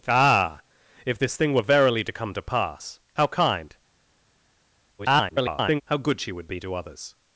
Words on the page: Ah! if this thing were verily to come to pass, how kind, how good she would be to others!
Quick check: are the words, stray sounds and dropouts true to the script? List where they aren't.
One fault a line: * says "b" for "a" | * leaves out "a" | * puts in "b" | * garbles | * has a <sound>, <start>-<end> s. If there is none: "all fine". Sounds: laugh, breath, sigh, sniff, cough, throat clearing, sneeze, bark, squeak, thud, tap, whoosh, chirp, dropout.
* garbles